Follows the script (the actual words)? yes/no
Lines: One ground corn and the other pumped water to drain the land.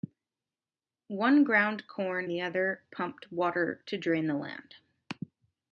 no